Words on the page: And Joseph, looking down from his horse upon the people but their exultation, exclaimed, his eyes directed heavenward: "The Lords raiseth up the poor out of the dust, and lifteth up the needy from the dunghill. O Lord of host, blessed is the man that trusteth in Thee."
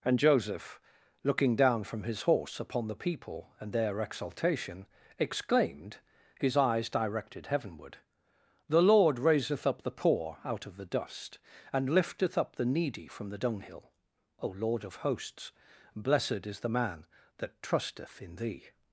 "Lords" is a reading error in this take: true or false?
true